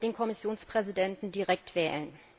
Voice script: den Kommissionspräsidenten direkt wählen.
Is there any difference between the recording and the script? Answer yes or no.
no